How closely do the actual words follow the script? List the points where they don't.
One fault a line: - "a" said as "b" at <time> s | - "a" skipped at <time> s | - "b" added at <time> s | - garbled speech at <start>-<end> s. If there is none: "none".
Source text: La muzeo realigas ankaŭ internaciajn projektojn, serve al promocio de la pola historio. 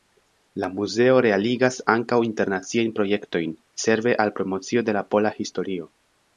none